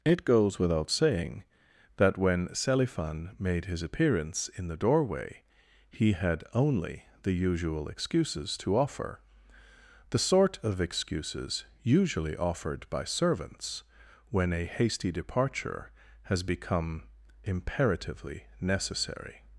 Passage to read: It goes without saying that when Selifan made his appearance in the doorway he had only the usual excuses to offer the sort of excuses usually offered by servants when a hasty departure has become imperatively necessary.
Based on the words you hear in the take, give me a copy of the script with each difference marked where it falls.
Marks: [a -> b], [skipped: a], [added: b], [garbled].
It goes without saying that when Selifan made his appearance in the doorway he had only the usual excuses to offer the sort of excuses usually offered by servants when a hasty departure has become imperatively necessary.